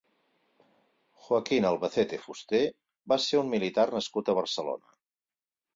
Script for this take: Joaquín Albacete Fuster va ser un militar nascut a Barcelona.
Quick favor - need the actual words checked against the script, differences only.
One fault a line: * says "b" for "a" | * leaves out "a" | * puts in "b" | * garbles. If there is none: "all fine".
all fine